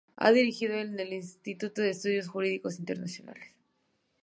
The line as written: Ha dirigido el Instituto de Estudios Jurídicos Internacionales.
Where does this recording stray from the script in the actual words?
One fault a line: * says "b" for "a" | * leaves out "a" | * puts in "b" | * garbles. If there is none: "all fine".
all fine